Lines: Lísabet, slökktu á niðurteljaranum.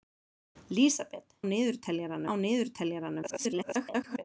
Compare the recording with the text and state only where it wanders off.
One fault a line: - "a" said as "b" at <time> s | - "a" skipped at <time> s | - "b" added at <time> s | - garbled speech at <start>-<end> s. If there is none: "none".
- "slökktu" said as "niðurteljaranum" at 1.5 s
- garbled speech at 3.2-4.2 s